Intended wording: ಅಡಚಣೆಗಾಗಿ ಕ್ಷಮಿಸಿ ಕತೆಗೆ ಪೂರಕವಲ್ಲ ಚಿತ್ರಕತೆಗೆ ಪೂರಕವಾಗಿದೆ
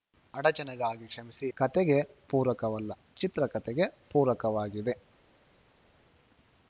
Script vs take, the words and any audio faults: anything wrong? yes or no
no